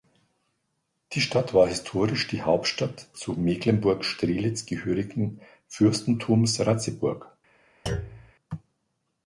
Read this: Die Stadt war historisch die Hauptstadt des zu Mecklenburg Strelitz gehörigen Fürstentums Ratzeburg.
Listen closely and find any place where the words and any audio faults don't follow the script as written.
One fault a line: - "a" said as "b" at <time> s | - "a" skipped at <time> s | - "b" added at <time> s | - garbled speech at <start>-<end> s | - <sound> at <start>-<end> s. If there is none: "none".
- "des" skipped at 3.1 s
- thud at 7.9-8.3 s